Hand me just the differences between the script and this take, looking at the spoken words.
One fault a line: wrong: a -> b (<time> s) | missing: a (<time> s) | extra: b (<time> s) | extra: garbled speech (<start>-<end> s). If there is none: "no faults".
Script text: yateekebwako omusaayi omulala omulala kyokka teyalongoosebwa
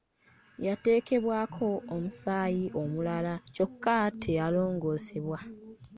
missing: omulala (3.3 s)